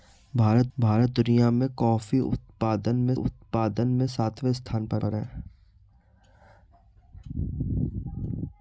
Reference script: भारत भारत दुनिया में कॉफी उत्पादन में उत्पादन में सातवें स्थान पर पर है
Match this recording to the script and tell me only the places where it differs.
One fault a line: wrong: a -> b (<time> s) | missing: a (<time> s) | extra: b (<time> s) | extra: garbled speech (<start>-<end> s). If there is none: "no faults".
no faults